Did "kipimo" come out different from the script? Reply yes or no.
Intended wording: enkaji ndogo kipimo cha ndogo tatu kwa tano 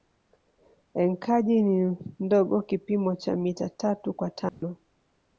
no